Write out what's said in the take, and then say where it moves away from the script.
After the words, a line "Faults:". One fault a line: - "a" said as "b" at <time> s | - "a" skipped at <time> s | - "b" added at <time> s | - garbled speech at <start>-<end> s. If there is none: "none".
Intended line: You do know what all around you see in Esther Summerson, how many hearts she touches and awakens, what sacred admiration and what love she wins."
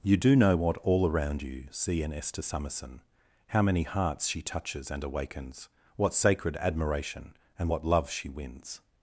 You do know what all around you see in Esther Summerson, how many hearts she touches and awakens, what sacred admiration and what love she wins."
Faults:
none